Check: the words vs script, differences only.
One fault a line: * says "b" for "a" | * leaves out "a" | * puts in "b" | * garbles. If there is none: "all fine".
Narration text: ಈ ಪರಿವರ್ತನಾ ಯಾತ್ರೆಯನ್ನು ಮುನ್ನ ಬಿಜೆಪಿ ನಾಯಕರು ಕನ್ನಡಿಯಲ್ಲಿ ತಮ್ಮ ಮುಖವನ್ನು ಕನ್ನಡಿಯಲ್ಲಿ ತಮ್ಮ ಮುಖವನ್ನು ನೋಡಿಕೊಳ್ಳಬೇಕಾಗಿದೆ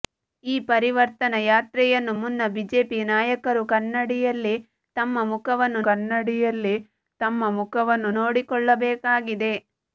all fine